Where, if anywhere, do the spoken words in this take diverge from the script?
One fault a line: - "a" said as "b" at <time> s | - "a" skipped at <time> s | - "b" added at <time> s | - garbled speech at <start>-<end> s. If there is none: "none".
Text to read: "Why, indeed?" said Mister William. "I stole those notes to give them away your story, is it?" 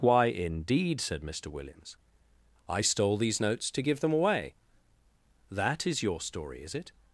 - "William" said as "Williams" at 1.5 s
- "those" said as "these" at 3.2 s
- "that is" added at 5.5 s